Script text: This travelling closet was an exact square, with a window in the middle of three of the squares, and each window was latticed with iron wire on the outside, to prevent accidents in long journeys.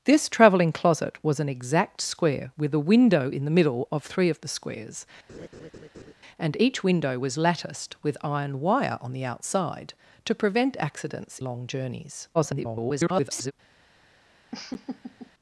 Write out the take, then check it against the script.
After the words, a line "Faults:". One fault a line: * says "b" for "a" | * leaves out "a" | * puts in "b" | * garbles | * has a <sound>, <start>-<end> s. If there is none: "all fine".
This travelling closet was an exact square, with a window in the middle of three of the squares, and each window was latticed with iron wire on the outside, to prevent accidents long journeys. [garbled]
Faults:
* has a laugh, 5.3-6.1 s
* leaves out "in"
* garbles
* has a laugh, 14.5-15.3 s